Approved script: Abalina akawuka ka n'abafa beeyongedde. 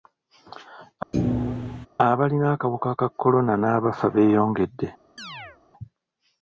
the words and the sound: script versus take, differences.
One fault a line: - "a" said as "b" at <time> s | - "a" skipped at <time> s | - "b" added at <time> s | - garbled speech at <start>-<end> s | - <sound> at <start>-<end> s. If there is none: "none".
- thud at 1.1-1.9 s
- "kolona" added at 3.2 s
- chirp at 5.2-5.6 s